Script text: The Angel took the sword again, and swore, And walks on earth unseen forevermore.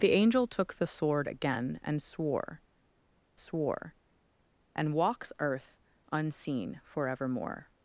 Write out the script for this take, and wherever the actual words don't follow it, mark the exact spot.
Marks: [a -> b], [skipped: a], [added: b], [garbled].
The Angel took the sword again, and swore, [added: swore] And walks [skipped: on] earth unseen forevermore.